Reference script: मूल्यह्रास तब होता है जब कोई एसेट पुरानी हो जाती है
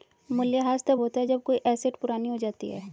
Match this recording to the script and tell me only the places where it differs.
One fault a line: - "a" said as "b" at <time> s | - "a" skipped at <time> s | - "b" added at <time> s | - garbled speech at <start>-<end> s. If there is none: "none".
none